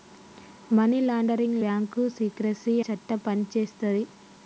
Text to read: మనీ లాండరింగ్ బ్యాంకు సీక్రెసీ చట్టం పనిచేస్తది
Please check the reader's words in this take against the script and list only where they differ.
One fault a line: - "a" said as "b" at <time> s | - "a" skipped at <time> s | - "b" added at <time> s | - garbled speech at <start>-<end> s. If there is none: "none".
none